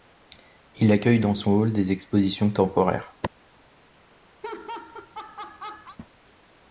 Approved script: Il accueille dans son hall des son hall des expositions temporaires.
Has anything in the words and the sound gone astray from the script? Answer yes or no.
yes